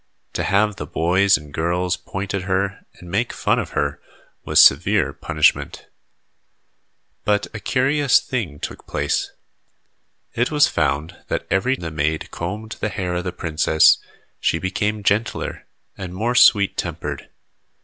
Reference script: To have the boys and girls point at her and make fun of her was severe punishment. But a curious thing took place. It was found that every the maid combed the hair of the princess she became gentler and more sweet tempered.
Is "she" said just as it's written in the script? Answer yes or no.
yes